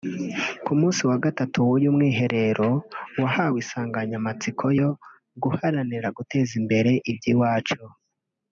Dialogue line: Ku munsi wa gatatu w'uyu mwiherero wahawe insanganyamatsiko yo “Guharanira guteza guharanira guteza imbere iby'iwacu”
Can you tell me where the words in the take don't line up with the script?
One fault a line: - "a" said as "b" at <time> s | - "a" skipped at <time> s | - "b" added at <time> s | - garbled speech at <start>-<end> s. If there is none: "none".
- "guharanira guteza" skipped at 6.5 s